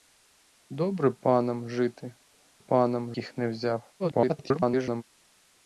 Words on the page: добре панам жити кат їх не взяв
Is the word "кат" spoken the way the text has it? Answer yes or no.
no